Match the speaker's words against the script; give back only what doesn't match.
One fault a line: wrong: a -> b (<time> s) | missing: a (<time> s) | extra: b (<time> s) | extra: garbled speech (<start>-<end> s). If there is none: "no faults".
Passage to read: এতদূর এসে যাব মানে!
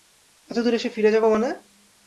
extra: ফিরে (0.9 s)